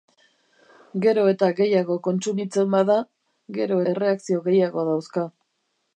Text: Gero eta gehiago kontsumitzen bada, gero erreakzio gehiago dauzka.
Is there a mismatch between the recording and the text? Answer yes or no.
no